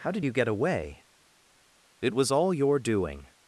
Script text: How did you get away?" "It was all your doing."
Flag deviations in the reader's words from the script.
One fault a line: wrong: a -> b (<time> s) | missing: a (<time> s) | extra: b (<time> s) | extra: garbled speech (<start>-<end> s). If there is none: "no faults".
no faults